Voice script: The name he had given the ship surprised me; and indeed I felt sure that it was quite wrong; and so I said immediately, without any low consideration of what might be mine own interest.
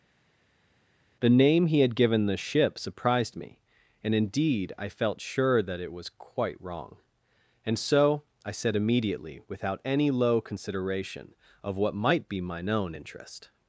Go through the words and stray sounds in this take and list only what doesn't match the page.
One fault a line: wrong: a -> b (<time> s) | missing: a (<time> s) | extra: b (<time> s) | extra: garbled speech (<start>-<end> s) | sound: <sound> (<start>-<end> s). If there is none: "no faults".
no faults